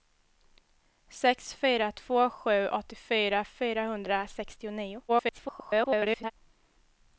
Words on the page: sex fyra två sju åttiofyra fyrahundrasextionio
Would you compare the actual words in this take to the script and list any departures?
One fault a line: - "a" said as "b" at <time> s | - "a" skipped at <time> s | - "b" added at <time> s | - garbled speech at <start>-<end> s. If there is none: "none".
- garbled speech at 5.1-6.3 s